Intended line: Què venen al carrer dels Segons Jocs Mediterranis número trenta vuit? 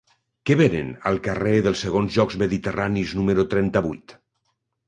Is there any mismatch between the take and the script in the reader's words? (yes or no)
no